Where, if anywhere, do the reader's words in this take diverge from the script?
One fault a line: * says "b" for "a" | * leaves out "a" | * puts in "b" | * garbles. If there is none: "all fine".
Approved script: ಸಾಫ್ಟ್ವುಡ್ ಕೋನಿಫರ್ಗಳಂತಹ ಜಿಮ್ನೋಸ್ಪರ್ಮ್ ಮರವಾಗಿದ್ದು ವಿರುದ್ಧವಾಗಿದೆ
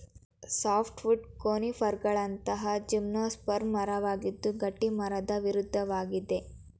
* puts in "ಗಟ್ಟಿಮರದ"